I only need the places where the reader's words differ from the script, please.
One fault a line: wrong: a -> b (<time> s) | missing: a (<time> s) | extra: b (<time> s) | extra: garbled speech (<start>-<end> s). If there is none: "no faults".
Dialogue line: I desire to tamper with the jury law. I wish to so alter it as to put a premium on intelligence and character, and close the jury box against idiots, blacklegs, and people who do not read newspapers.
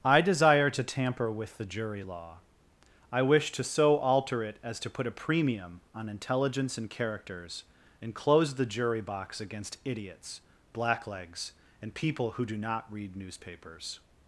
wrong: character -> characters (6.9 s)